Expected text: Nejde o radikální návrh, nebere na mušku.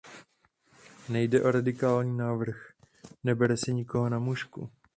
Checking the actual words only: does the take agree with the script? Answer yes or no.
no